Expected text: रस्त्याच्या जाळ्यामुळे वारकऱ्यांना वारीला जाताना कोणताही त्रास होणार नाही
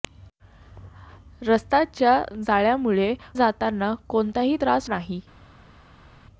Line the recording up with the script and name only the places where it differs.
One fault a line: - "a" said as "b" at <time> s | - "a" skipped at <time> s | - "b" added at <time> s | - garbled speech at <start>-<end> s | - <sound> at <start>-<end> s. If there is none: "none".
- "वारकऱ्यांना वारीला" skipped at 3.1 s
- "होणार" skipped at 4.9 s